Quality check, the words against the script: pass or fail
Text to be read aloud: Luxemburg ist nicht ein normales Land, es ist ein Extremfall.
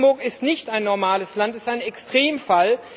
pass